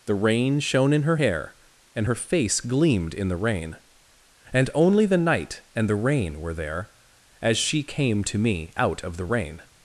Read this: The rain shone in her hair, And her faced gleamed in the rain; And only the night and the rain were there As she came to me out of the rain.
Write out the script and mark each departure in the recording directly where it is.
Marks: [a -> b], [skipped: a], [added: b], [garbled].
The rain shone in her hair, And her [faced -> face] gleamed in the rain; And only the night and the rain were there As she came to me out of the rain.